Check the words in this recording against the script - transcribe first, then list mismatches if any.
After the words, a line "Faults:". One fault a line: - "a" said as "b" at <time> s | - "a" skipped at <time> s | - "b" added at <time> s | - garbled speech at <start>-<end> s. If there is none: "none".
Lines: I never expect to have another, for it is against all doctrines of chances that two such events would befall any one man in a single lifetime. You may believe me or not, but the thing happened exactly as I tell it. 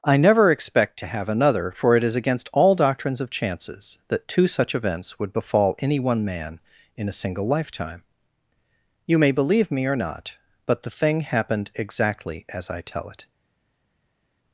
I never expect to have another, for it is against all doctrines of chances that two such events would befall any one man in a single lifetime. You may believe me or not, but the thing happened exactly as I tell it.
Faults:
none